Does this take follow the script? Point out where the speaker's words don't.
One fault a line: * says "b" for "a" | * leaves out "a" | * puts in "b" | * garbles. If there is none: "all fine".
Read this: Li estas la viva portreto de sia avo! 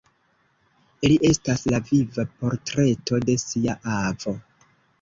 all fine